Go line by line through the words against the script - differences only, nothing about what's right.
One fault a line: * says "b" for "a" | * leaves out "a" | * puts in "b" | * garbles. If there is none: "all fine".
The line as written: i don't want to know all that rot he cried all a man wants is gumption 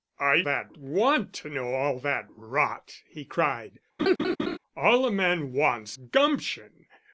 * says "that" for "don't"
* leaves out "is"